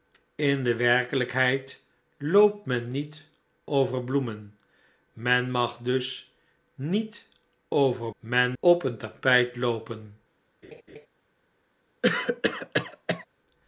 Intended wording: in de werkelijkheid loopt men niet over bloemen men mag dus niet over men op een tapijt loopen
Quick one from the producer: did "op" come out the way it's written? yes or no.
yes